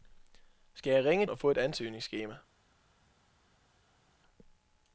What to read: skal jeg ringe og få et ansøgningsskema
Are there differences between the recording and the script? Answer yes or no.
no